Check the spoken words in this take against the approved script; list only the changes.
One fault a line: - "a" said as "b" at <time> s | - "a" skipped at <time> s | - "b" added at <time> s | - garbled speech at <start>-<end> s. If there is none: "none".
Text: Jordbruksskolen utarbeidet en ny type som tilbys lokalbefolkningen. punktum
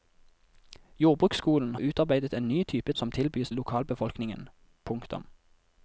none